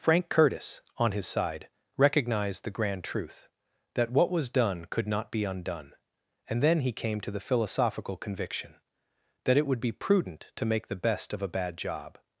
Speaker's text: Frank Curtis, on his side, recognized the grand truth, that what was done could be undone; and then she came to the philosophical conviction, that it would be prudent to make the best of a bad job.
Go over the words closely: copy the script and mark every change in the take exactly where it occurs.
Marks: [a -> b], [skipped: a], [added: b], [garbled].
Frank Curtis, on his side, recognized the grand truth, that what was done could [added: not] be undone; and then [she -> he] came to the philosophical conviction, that it would be prudent to make the best of a bad job.